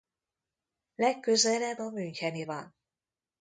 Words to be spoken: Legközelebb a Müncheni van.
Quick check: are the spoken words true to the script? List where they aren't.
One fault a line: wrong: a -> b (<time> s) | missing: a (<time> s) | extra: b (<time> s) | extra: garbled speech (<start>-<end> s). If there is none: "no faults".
no faults